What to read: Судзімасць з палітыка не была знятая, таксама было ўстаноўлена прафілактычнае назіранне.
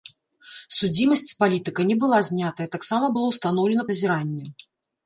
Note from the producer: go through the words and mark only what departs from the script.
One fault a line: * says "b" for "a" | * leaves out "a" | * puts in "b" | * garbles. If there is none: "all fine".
* leaves out "прафілактычнае"